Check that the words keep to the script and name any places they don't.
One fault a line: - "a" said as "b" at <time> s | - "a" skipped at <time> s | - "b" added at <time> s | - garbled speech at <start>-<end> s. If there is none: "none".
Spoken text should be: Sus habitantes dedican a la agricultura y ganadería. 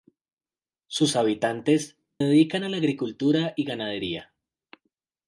none